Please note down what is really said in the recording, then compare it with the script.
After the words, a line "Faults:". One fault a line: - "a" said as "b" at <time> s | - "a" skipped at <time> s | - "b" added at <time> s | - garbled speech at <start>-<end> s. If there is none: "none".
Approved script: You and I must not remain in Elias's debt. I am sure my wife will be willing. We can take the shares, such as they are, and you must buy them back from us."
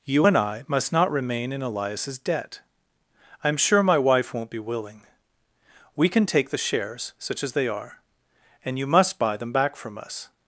You and I must not remain in Elias's debt. I am sure my wife won't be willing. We can take the shares, such as they are, and you must buy them back from us."
Faults:
- "will" said as "won't" at 4.3 s